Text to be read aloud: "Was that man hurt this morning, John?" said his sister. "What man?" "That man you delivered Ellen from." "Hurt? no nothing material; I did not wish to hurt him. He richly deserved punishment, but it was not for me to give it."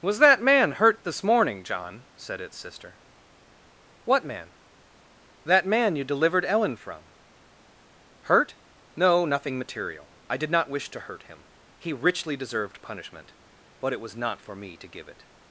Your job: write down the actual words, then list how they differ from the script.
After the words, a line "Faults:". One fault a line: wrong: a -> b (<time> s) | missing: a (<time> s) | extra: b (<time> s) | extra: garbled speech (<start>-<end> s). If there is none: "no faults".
"Was that man hurt this morning, John?" said its sister. "What man?" "That man you delivered Ellen from." "Hurt? no nothing material; I did not wish to hurt him. He richly deserved punishment, but it was not for me to give it."
Faults:
wrong: his -> its (2.4 s)